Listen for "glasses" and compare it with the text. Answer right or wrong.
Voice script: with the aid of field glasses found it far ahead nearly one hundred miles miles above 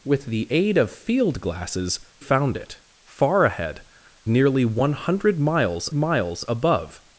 right